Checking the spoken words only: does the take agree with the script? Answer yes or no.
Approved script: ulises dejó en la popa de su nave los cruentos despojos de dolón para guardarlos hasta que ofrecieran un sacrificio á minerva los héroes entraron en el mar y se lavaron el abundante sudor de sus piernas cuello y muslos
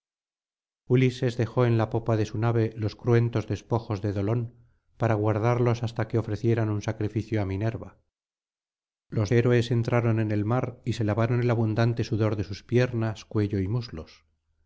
yes